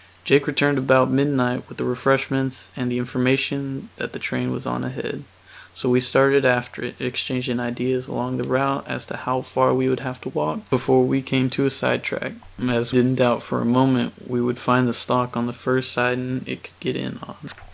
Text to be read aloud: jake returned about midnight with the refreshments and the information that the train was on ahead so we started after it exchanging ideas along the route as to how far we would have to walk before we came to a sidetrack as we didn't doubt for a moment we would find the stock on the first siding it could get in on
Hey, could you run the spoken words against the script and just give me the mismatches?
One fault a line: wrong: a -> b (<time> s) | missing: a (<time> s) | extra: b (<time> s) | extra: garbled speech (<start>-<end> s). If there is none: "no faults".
missing: we (12.9 s)